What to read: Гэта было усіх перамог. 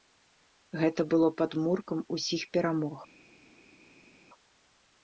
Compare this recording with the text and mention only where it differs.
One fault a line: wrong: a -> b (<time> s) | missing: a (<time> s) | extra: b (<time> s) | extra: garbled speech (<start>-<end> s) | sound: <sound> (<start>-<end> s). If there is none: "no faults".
extra: падмуркам (1.4 s)